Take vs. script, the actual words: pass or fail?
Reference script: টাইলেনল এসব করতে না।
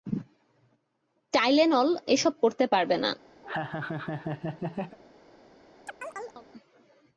fail